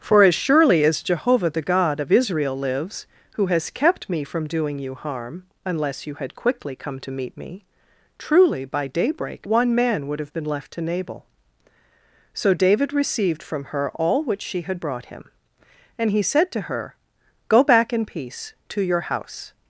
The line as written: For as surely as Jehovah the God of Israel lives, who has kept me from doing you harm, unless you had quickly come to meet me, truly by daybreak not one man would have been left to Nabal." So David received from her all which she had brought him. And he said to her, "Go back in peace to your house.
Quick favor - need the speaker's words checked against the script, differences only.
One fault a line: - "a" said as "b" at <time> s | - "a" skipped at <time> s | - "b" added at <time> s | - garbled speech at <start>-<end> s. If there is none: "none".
- "not" skipped at 9.5 s